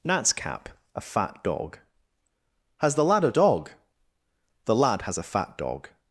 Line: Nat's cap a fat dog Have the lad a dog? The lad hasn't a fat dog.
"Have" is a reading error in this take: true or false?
true